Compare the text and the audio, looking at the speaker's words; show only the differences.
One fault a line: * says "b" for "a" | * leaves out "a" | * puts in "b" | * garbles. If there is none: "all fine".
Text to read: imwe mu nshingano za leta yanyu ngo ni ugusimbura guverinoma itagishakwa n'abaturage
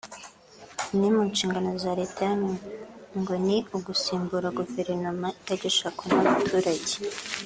all fine